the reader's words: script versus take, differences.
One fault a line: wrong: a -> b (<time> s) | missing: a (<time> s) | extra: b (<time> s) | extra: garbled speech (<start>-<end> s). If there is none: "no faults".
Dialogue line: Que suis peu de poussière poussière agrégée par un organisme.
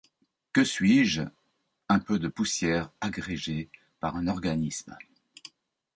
extra: je un (1.1 s)
missing: poussière (2.9 s)